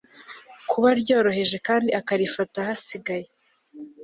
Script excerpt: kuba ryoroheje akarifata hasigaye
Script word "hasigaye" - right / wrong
right